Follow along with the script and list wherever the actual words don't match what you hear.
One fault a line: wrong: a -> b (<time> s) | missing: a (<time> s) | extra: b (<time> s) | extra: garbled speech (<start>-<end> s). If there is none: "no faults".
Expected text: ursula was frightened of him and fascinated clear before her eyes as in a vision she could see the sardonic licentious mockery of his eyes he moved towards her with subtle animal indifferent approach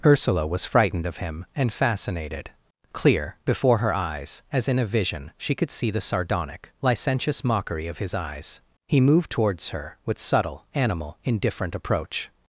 no faults